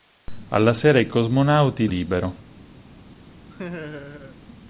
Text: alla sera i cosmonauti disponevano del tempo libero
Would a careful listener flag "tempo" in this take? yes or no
yes